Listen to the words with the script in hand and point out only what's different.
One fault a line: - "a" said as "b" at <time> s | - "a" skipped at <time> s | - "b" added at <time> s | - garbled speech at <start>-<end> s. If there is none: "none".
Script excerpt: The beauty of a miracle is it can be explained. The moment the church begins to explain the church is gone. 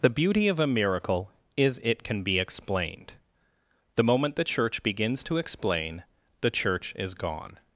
none